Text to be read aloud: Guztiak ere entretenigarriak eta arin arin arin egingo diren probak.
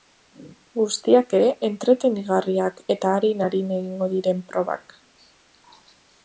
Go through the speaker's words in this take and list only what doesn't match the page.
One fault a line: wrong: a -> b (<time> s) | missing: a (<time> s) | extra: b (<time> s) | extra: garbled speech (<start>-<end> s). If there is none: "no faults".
missing: arin (3.7 s)